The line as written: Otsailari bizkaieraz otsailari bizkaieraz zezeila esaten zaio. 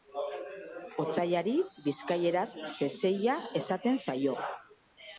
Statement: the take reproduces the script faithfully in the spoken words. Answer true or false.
false